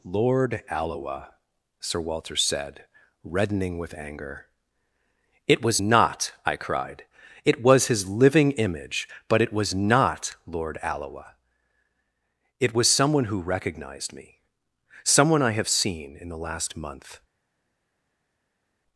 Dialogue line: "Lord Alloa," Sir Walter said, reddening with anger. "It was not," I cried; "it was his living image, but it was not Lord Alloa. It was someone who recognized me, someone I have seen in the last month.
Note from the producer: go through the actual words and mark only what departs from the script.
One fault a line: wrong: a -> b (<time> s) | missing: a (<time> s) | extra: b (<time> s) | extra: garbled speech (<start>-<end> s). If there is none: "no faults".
no faults